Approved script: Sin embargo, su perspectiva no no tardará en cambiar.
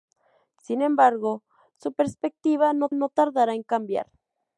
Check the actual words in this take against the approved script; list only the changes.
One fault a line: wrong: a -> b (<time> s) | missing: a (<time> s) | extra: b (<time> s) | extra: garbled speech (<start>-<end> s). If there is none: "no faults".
no faults